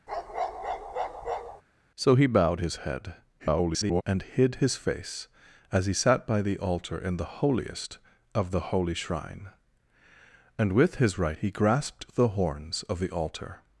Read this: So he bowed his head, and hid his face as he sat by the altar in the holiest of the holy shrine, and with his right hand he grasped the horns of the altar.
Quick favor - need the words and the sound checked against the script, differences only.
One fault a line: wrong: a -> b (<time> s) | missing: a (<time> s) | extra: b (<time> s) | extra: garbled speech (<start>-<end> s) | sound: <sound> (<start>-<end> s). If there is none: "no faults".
sound: bark (0.1-1.6 s)
extra: garbled speech (3.4-4.0 s)
missing: hand (11.4 s)